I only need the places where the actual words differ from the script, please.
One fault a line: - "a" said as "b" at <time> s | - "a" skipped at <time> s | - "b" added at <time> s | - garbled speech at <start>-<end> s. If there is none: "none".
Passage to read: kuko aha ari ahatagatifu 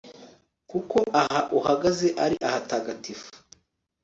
- "uhagaze" added at 1.6 s